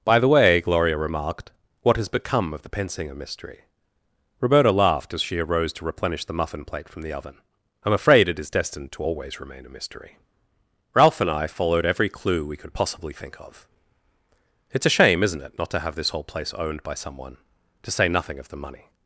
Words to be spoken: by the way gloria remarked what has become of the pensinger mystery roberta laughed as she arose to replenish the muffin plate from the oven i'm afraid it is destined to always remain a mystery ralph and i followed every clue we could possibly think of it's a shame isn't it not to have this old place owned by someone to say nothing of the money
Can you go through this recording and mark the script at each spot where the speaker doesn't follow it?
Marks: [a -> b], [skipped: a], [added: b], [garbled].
by the way gloria remarked what has become of the pensinger mystery roberta laughed as she arose to replenish the muffin plate from the oven i'm afraid it is destined to always remain a mystery ralph and i followed every clue we could possibly think of it's a shame isn't it not to have this [old -> whole] place owned by someone to say nothing of the money